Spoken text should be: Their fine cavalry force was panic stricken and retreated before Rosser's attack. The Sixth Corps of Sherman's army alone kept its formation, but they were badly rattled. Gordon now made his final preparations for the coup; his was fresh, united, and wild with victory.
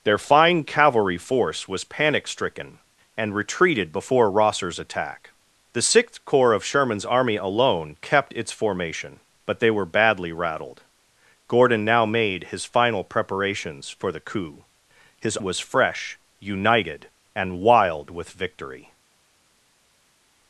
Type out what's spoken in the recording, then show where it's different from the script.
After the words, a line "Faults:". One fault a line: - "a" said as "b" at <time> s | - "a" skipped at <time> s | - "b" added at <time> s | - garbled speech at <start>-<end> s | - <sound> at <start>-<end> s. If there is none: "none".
Their fine cavalry force was panic stricken and retreated before Rosser's attack. The Sixth Corps of Sherman's army alone kept its formation, but they were badly rattled. Gordon now made his final preparations for the coup; his was fresh, united, and wild with victory.
Faults:
none